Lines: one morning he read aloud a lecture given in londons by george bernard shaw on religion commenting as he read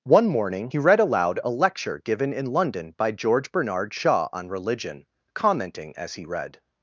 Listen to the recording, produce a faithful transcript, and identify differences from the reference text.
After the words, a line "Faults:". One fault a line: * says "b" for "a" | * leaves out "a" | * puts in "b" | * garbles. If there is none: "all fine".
one morning he read aloud a lecture given in london by george bernard shaw on religion commenting as he read
Faults:
* says "london" for "londons"